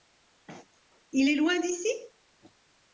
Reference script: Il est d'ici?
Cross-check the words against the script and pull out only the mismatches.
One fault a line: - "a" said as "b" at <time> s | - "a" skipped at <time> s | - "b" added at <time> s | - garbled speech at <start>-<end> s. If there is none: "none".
- "loin" added at 1.3 s